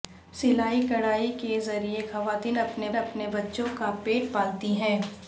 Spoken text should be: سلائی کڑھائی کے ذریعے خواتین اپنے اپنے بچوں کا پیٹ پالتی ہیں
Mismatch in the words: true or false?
false